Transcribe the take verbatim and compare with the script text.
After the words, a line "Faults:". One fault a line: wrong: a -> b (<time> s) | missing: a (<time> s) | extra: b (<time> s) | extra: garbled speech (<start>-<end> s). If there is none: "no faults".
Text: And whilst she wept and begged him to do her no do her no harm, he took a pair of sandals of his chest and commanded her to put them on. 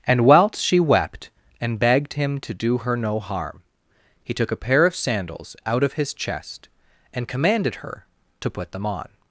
And whilst she wept and begged him to do her no harm, he took a pair of sandals out of his chest and commanded her to put them on.
Faults:
missing: do her no (3.2 s)
extra: out (5.7 s)